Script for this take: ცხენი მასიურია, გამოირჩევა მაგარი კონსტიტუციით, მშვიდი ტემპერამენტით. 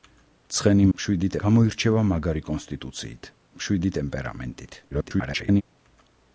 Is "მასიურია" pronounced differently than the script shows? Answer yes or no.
yes